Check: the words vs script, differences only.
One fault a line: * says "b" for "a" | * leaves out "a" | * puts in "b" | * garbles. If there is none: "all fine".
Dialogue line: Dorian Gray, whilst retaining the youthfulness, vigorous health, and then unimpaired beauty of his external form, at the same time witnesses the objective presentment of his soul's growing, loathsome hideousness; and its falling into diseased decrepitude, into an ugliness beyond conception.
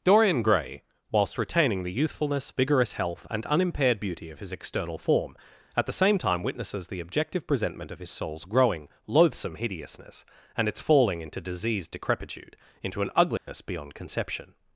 * leaves out "then"